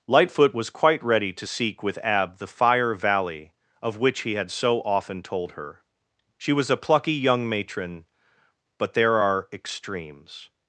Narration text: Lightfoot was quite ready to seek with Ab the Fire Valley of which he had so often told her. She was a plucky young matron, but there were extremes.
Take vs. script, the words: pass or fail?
fail